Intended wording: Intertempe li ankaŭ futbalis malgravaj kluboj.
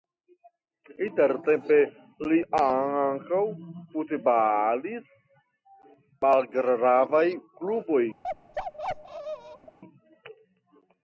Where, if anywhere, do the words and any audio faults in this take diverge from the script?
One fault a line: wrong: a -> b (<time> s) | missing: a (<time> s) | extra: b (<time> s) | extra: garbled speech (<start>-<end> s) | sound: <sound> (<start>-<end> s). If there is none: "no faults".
sound: bark (8.2-9.8 s)